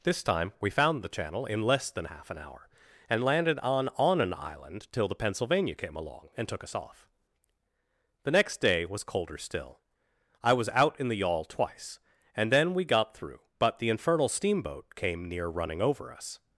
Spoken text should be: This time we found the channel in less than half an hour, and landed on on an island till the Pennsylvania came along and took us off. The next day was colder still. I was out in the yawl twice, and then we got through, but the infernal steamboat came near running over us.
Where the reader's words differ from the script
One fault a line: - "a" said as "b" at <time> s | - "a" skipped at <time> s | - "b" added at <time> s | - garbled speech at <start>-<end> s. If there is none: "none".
none